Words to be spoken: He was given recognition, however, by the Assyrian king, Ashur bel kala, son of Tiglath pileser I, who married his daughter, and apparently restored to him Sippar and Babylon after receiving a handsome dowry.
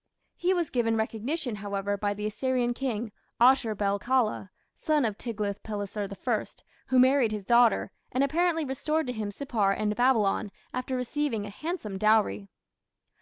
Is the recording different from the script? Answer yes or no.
no